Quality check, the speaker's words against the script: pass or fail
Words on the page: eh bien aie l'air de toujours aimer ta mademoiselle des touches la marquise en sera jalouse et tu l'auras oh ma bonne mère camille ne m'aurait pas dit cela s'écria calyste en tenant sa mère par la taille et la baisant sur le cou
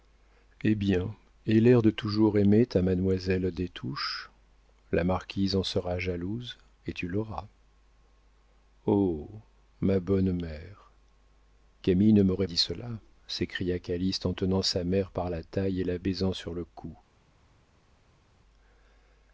fail